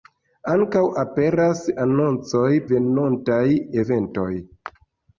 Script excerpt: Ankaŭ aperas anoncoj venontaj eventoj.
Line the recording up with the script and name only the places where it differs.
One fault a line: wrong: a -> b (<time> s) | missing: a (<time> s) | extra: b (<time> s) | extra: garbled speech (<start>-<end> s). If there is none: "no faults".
no faults